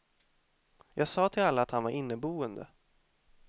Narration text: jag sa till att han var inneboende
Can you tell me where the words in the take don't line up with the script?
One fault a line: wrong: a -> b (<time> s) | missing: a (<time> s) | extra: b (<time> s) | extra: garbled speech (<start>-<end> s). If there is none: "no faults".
extra: alla (1.4 s)